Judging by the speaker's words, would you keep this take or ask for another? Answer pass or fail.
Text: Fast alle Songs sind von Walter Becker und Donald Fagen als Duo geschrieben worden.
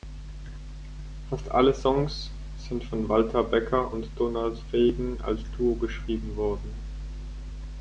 pass